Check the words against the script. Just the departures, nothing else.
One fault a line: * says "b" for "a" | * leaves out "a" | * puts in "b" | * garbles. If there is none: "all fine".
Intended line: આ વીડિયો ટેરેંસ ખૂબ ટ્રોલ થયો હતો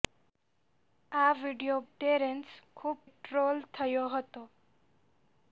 all fine